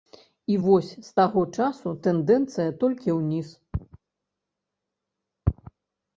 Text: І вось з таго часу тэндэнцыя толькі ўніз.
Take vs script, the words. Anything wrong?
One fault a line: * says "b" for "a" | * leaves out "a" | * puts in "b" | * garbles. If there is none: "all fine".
all fine